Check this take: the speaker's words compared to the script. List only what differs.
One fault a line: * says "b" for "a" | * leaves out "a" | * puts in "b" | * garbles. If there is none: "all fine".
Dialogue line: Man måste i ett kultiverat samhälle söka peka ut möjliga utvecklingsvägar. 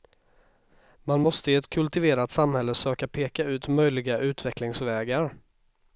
all fine